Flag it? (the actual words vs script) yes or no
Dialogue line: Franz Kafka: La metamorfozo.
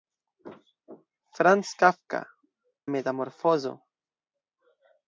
yes